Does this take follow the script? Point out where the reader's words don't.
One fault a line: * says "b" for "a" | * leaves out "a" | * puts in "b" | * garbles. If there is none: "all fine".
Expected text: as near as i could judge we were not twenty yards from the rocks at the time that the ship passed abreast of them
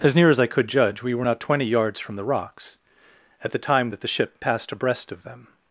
all fine